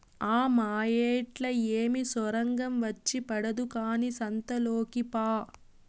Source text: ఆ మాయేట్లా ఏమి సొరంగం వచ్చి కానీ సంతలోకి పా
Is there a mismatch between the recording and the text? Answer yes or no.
yes